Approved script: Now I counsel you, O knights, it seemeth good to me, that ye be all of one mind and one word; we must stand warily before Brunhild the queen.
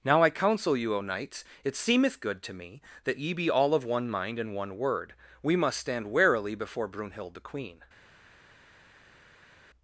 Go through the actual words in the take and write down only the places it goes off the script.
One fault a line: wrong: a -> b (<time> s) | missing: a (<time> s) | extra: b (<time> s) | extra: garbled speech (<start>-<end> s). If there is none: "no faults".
no faults